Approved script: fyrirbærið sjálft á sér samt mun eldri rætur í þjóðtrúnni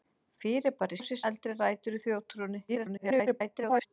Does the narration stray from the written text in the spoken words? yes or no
yes